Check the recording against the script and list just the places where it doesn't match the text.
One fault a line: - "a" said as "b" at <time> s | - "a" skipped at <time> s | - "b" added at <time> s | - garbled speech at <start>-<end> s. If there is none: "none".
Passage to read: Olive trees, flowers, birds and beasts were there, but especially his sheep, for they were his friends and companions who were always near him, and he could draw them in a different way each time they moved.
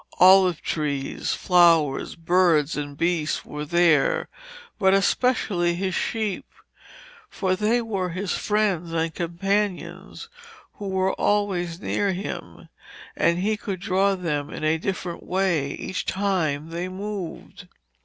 none